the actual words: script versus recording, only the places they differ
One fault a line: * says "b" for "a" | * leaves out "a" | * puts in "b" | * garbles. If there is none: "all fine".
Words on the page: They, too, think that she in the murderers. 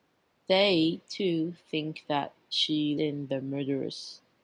all fine